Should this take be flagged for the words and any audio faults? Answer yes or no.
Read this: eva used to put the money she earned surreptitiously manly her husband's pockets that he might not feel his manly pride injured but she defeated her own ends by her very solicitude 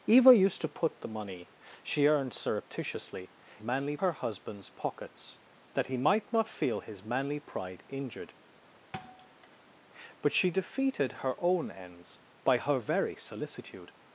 yes